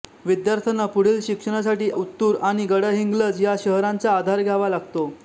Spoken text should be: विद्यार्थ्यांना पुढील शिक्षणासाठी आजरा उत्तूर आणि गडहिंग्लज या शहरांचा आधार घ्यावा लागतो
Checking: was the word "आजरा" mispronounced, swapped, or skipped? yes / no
yes